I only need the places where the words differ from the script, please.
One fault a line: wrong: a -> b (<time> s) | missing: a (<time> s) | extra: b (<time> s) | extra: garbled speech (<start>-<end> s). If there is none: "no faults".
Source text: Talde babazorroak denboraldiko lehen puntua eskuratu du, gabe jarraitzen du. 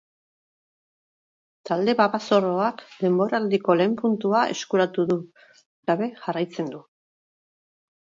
no faults